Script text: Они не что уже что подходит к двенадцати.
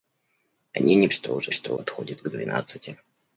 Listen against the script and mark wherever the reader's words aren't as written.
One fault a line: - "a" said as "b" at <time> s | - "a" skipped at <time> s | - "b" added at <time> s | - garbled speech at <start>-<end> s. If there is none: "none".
none